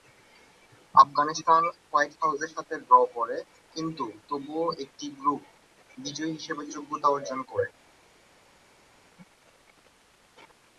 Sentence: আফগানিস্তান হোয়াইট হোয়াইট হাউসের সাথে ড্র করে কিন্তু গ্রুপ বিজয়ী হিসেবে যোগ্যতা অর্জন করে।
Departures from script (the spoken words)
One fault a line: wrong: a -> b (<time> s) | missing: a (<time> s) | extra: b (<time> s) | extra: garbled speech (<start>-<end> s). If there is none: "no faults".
missing: হোয়াইট (2.1 s)
extra: তবুও একটি (4.3 s)